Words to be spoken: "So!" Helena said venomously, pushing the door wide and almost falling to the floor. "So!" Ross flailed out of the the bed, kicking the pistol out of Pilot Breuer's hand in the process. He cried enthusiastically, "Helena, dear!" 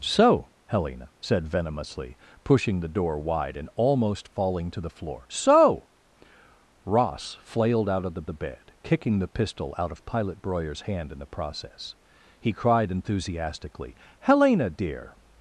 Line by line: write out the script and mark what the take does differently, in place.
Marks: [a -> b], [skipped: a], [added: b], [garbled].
"So!" Helena said venomously, pushing the door wide and almost falling to the floor. "So!" Ross flailed out of the the bed, kicking the pistol out of Pilot Breuer's hand in the process. He cried enthusiastically, "Helena, dear!"